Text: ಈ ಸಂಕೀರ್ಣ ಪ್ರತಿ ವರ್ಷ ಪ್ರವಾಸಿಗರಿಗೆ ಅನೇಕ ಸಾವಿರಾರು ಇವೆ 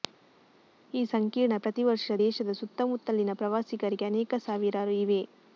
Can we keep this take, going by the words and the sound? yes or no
no